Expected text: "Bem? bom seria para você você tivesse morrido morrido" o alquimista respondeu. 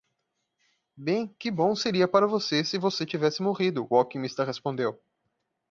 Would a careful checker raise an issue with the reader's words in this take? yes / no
yes